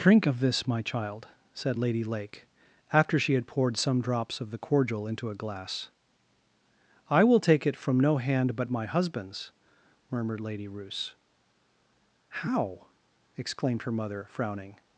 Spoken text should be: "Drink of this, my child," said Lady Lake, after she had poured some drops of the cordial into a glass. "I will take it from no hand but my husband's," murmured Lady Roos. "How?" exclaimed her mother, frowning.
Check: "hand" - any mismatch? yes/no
no